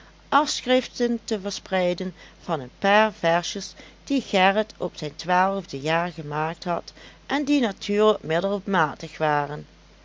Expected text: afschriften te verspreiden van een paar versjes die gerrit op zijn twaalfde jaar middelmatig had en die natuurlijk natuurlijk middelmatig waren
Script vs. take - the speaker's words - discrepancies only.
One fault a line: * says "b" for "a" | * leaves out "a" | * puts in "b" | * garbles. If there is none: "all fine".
* says "gemaakt" for "middelmatig"
* leaves out "natuurlijk"